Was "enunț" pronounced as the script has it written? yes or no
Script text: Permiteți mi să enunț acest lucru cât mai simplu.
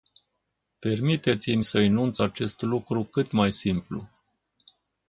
yes